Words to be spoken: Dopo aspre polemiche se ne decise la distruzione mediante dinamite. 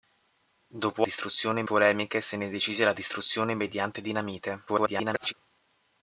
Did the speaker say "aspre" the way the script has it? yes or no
no